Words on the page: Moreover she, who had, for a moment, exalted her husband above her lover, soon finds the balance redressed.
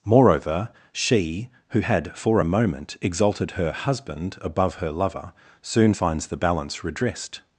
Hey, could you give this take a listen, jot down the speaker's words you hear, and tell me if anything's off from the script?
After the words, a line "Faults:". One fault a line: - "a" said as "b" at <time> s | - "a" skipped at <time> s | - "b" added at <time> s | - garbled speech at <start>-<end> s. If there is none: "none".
Moreover she, who had, for a moment, exalted her husband above her lover, soon finds the balance redressed.
Faults:
none